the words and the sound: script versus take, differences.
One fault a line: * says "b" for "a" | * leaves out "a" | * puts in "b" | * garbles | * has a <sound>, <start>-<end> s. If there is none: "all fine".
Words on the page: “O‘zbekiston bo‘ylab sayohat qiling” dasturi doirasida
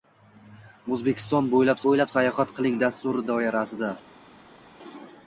* puts in "bo‘ylab"